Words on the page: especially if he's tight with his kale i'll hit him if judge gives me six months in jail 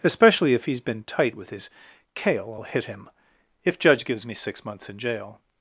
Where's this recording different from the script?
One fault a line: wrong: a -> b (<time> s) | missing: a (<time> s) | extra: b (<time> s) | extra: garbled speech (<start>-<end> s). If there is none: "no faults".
extra: been (0.8 s)